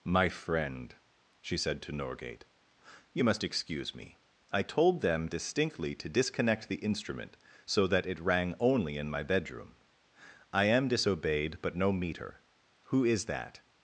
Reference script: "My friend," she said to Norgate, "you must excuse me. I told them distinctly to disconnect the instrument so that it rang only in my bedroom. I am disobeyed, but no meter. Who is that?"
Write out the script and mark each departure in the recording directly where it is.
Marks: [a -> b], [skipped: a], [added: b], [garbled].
"My friend," she said to Norgate, "you must excuse me. I told them distinctly to disconnect the instrument so that it rang only in my bedroom. I am disobeyed, but no meter. Who is that?"